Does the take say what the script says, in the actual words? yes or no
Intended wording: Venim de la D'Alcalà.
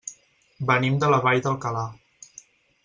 no